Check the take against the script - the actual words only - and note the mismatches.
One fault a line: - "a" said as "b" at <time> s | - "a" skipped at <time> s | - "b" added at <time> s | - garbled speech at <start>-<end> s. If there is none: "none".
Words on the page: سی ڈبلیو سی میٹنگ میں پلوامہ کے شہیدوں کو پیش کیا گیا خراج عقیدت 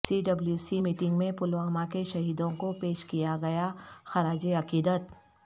none